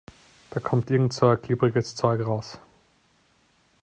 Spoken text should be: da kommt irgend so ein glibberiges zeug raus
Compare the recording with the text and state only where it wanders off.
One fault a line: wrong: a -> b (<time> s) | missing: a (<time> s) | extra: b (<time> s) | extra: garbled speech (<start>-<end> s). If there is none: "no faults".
no faults